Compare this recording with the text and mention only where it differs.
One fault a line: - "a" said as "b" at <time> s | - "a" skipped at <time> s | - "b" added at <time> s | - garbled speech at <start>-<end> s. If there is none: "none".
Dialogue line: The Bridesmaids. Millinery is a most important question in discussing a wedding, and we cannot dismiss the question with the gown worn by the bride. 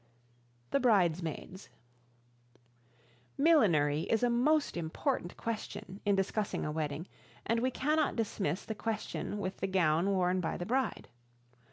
none